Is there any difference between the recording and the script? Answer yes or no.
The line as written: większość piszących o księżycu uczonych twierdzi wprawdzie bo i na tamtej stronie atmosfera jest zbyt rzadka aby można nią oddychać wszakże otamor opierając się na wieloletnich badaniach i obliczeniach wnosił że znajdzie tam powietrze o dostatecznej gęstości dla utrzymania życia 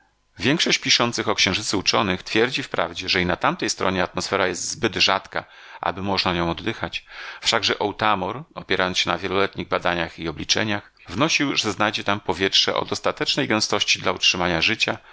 yes